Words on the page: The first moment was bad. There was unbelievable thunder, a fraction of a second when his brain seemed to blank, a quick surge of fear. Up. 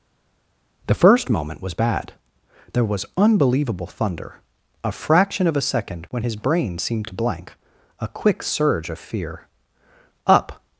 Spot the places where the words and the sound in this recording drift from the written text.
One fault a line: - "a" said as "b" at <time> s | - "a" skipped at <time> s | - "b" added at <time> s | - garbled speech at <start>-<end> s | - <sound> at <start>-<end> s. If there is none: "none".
none